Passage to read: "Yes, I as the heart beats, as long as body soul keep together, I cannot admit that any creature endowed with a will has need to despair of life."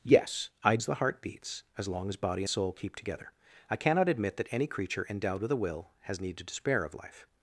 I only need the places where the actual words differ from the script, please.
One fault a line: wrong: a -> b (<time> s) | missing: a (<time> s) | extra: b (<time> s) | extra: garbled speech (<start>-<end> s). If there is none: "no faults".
no faults